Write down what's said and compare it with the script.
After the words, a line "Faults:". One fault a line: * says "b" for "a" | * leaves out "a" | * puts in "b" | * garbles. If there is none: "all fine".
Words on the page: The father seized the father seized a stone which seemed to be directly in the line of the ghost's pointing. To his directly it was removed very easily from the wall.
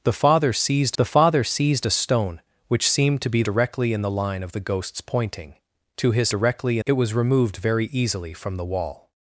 The father seized the father seized a stone which seemed to be directly in the line of the ghost's pointing. To his directly it was removed very easily from the wall.
Faults:
all fine